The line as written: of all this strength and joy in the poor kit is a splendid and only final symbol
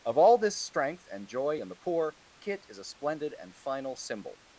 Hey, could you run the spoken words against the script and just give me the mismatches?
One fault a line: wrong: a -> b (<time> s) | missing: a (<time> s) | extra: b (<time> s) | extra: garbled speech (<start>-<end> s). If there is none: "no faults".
missing: only (3.5 s)